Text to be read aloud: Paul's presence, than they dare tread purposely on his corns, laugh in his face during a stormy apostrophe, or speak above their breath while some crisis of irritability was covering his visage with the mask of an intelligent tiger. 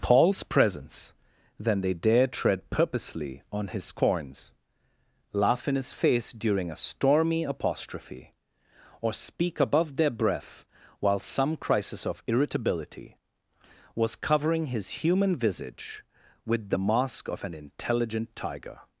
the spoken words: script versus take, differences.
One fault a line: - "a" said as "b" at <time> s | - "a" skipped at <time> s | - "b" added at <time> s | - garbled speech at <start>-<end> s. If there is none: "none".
- "human" added at 15.0 s